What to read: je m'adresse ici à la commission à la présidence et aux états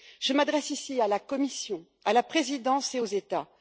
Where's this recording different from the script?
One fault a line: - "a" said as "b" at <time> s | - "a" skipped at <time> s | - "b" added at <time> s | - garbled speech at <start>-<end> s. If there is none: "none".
none